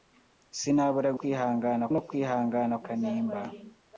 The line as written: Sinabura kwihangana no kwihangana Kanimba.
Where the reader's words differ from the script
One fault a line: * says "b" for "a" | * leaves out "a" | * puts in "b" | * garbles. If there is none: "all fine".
all fine